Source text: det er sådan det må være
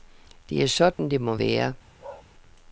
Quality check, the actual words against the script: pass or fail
pass